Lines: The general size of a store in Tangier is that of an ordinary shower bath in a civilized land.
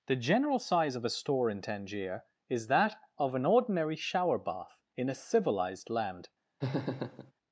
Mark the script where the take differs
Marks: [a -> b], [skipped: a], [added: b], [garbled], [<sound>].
The general size of a store in Tangier is that of an ordinary shower bath in a civilized land. [laugh]